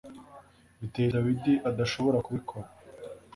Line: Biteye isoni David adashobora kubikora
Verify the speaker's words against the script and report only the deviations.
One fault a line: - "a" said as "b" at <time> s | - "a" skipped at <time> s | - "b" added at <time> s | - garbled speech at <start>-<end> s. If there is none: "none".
- "isoni" skipped at 1.1 s